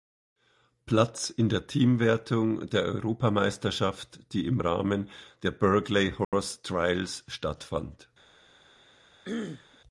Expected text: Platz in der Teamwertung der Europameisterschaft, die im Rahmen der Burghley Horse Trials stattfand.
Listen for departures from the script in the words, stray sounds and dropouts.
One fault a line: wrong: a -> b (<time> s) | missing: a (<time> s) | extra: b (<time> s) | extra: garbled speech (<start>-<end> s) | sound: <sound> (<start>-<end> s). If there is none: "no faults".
sound: dropout (6.2-6.3 s)
sound: throat clearing (9.2-9.8 s)